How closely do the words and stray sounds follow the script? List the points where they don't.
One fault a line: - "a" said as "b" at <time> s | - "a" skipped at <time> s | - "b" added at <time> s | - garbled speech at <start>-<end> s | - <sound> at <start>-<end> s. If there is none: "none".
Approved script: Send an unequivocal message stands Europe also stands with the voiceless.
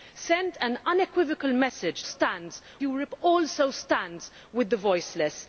none